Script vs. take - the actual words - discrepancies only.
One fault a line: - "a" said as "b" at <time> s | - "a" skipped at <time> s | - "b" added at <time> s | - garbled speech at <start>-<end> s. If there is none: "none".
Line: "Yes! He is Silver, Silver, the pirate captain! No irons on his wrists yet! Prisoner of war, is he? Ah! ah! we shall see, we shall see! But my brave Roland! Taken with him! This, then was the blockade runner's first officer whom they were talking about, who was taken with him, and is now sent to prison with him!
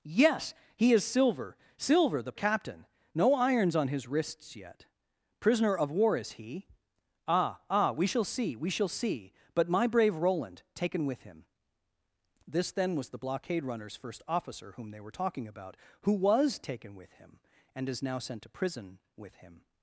- "pirate" skipped at 2.3 s